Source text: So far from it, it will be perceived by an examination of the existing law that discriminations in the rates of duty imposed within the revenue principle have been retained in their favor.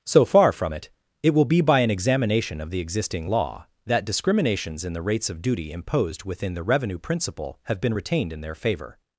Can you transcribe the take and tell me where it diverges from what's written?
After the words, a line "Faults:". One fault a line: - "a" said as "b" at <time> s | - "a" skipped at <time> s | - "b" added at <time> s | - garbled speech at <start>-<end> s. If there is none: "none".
So far from it, it will be by an examination of the existing law that discriminations in the rates of duty imposed within the revenue principle have been retained in their favor.
Faults:
- "perceived" skipped at 1.6 s